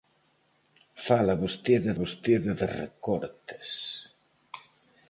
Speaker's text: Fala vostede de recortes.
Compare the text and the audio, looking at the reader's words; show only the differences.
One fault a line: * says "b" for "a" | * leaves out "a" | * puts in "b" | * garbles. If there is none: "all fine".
* puts in "vostede"